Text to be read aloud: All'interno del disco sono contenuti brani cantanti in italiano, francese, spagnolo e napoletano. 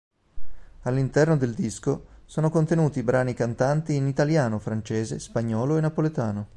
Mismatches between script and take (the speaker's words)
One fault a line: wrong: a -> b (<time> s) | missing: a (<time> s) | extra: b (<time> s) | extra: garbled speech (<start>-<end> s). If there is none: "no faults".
no faults